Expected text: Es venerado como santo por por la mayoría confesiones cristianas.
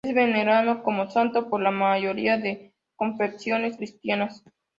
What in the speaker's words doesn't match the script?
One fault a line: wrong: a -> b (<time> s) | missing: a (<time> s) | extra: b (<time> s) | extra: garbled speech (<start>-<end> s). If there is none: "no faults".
missing: por (1.6 s)
extra: de (2.4 s)